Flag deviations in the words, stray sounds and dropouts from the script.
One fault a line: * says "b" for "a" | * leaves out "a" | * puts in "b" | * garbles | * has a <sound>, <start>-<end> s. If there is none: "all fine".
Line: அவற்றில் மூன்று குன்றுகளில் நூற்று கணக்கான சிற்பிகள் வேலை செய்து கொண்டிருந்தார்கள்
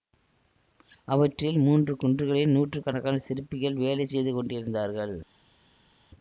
all fine